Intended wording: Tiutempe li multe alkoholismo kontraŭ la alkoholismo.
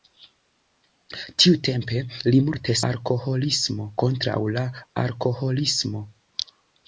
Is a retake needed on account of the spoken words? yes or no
no